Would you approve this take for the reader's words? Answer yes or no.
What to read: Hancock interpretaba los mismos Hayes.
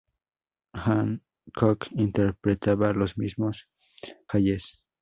yes